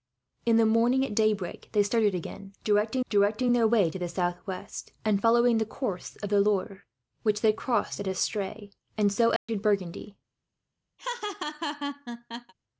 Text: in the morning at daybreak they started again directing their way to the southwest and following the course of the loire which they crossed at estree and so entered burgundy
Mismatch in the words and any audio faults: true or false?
true